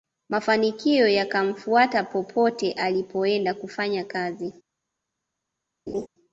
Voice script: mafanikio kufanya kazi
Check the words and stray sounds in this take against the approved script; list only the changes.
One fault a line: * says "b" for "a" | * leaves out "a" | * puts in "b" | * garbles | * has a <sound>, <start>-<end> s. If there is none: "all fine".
* puts in "yakamfuata popote alipoenda"
* has a laugh, 5.9-6.1 s